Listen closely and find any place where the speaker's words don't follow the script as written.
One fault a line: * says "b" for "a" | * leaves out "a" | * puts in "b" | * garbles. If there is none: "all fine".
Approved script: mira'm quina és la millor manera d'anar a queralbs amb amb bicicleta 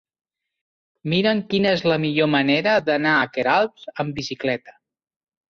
* leaves out "amb"